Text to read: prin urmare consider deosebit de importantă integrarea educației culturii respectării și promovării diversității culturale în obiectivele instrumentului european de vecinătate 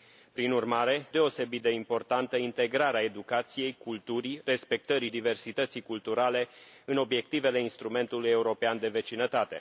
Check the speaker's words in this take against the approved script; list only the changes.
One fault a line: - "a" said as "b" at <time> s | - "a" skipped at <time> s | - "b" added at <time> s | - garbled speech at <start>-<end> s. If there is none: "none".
- "consider" skipped at 1.1 s
- "și promovării" skipped at 5.1 s